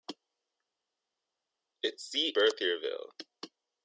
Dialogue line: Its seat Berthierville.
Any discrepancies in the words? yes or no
no